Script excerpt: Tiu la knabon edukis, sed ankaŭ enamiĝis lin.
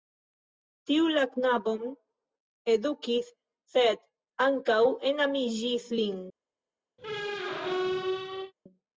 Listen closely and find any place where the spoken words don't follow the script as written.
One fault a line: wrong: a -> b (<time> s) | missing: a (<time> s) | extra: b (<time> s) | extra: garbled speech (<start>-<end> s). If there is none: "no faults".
no faults